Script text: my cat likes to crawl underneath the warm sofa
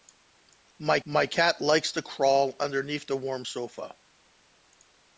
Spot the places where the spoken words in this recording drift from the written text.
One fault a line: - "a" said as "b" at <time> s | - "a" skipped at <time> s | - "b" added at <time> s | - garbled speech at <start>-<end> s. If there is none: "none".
- "my" added at 1.1 s